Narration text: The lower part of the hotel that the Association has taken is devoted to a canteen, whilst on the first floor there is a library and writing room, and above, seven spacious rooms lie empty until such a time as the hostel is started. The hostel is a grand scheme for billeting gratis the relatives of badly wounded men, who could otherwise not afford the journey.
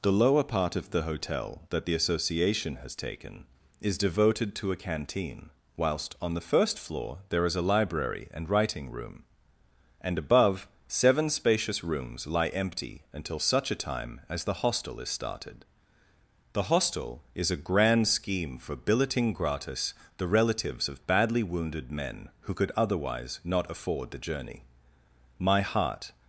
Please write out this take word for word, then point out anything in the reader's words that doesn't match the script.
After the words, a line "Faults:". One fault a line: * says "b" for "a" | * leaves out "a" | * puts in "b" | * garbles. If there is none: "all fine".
The lower part of the hotel that the Association has taken is devoted to a canteen, whilst on the first floor there is a library and writing room, and above, seven spacious rooms lie empty until such a time as the hostel is started. The hostel is a grand scheme for billeting gratis the relatives of badly wounded men, who could otherwise not afford the journey. My heart
Faults:
* puts in "My heart"